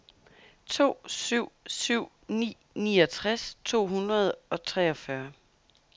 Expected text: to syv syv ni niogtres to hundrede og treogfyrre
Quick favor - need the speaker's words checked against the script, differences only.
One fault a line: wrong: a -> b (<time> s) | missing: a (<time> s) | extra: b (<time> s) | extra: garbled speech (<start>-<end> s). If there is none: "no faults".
no faults